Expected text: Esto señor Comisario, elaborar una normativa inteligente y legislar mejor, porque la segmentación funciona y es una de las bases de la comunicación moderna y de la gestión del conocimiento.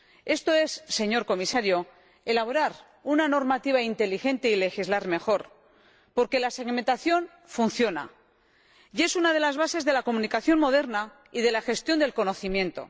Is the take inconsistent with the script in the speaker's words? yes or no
yes